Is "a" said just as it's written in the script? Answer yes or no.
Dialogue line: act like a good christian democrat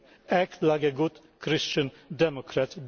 yes